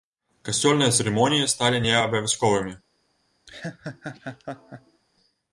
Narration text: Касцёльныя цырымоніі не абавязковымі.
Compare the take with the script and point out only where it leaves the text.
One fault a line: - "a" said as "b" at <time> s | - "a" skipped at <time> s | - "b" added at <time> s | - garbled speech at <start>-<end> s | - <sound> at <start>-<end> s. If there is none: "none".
- "сталі" added at 1.5 s
- laugh at 3.5-5.0 s